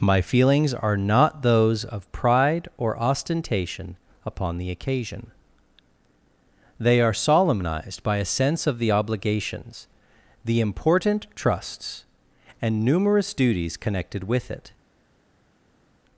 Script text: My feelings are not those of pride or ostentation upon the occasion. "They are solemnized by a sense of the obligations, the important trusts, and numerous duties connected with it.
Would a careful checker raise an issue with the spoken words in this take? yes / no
no